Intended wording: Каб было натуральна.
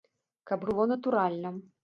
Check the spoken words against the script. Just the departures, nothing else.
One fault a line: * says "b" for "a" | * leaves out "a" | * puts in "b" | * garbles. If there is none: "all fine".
all fine